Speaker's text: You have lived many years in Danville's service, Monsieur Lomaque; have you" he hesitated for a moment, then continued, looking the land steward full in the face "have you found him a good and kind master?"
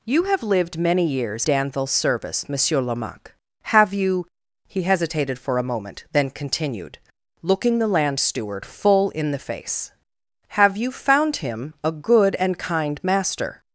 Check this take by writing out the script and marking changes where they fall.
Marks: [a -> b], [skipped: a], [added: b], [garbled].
You have lived many years [skipped: in] Danville's service, Monsieur Lomaque; have you" he hesitated for a moment, then continued, looking the land steward full in the face "have you found him a good and kind master?"